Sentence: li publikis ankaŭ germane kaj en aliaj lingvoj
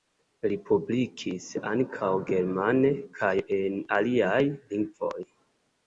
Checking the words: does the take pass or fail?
pass